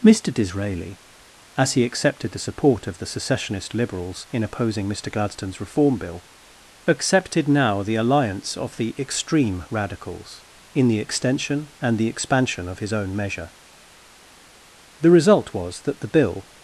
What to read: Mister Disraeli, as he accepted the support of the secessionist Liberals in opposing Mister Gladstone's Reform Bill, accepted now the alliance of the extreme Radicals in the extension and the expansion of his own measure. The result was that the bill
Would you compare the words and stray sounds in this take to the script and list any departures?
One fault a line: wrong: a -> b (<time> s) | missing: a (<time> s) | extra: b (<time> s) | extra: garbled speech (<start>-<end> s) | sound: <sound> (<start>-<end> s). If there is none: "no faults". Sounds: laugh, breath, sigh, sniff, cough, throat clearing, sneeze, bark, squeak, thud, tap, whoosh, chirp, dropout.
no faults